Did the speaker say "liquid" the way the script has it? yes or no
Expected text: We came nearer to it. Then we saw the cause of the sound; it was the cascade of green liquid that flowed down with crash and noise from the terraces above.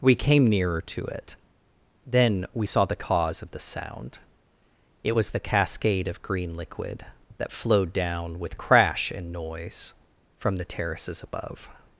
yes